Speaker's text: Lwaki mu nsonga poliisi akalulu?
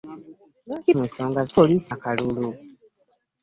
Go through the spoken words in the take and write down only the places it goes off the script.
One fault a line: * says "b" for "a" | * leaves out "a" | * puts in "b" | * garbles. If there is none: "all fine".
all fine